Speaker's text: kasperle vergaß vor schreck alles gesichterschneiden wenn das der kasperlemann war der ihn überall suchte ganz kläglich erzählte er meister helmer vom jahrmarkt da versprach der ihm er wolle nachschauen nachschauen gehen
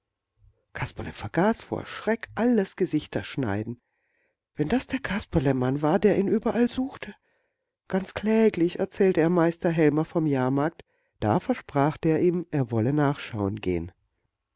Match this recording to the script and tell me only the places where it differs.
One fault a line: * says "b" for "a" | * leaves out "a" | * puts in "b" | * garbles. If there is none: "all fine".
* leaves out "nachschauen"